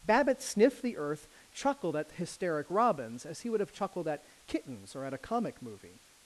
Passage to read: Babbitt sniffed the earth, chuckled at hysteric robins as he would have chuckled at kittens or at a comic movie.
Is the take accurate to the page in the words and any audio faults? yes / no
yes